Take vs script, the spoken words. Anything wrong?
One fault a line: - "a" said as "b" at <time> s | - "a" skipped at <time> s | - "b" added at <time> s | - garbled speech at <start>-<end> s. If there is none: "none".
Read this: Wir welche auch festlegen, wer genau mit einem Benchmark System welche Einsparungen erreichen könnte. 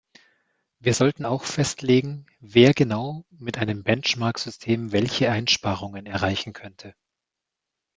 - "welche" said as "sollten" at 0.9 s